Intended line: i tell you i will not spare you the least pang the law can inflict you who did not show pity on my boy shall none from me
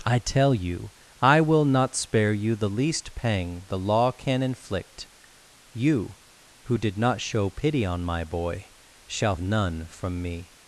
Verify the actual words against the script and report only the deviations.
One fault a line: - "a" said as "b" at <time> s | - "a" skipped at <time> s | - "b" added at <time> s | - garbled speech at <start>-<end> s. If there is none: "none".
none